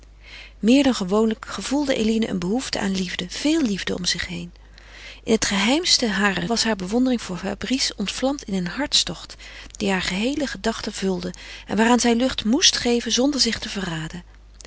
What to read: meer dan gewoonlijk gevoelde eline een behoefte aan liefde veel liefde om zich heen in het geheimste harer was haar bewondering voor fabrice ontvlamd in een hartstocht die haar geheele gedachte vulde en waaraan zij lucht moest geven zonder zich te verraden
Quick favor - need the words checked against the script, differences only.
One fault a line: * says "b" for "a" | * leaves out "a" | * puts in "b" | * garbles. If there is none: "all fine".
all fine